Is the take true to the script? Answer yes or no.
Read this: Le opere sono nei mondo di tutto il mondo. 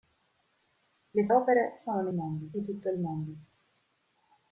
yes